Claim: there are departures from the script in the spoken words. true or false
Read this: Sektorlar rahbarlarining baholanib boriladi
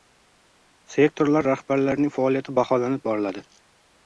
true